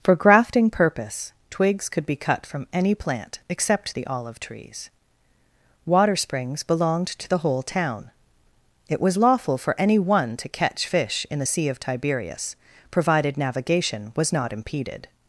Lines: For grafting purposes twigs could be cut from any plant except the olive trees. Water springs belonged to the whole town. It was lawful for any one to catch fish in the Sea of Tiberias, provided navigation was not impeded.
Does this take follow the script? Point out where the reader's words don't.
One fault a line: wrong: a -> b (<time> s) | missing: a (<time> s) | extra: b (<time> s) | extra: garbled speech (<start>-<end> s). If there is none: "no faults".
wrong: purposes -> purpose (0.7 s)